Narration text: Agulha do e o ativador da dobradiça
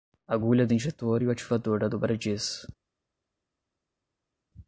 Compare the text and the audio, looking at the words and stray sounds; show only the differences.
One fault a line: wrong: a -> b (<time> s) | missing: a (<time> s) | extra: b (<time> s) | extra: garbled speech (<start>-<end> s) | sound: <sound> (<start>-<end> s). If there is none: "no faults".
extra: injetor (0.7 s)